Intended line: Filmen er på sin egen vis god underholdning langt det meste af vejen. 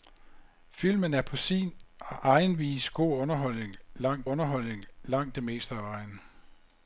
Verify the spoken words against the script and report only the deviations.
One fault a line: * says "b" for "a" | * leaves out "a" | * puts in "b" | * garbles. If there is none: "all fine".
* puts in "underholdning langt"